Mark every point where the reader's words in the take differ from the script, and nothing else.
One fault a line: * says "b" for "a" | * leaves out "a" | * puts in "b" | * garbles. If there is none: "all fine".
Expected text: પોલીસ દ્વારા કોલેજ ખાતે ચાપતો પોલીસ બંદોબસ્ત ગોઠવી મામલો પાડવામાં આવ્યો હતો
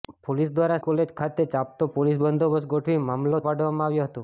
all fine